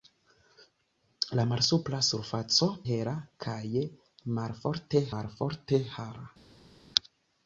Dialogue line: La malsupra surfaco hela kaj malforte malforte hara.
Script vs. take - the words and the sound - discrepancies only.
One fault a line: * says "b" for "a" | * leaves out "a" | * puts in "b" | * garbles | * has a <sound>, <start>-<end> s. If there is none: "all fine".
all fine